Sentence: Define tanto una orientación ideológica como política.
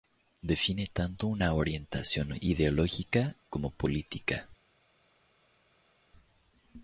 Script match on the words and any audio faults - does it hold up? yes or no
yes